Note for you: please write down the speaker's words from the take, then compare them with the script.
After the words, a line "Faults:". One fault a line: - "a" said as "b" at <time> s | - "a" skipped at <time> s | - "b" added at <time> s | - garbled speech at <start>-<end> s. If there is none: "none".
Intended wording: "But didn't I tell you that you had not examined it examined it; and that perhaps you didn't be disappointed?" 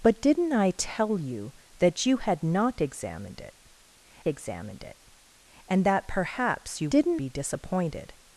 "But didn't I tell you that you had not examined it examined it; and that perhaps you didn't be disappointed?"
Faults:
none